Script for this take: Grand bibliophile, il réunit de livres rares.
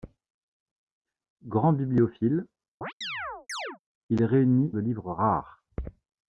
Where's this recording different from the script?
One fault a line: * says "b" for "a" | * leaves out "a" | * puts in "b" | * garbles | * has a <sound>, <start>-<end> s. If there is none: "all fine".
* has a chirp, 2.8-3.8 s